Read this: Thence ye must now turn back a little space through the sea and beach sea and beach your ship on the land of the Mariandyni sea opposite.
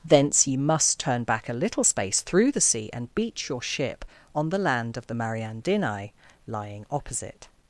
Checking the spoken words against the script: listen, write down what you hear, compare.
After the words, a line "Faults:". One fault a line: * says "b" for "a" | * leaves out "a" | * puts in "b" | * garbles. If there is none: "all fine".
Thence ye must turn back a little space through the sea and beach your ship on the land of the Mariandyni lying opposite.
Faults:
* leaves out "now"
* leaves out "sea and beach"
* says "lying" for "sea"